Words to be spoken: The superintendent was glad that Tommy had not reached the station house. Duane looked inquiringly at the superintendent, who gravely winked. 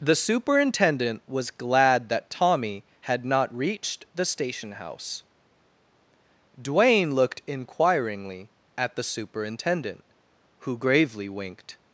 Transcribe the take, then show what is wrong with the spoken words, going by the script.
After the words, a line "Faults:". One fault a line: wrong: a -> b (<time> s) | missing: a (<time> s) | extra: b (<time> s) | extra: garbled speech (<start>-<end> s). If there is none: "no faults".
The superintendent was glad that Tommy had not reached the station house. Duane looked inquiringly at the superintendent, who gravely winked.
Faults:
no faults